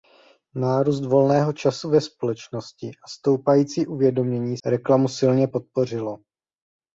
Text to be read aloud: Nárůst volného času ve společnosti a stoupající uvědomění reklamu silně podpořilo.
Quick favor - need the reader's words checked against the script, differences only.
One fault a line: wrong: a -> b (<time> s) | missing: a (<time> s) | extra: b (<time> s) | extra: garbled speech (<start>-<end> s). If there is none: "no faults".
no faults